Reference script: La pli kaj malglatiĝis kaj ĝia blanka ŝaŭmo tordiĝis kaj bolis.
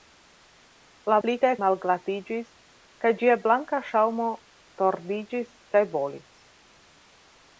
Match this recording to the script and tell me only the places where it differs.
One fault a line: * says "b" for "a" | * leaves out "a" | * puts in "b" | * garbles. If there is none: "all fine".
all fine